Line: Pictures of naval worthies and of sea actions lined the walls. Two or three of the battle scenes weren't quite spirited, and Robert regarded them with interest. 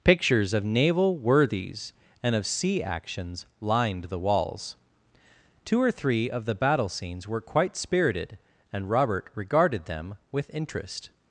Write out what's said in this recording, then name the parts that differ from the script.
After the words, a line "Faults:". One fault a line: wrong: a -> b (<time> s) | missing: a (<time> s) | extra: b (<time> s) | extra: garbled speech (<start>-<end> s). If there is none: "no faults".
Pictures of naval worthies and of sea actions lined the walls. Two or three of the battle scenes were quite spirited, and Robert regarded them with interest.
Faults:
wrong: weren't -> were (7.3 s)